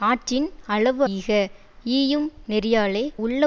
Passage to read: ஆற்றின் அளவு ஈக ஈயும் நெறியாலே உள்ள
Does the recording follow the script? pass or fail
pass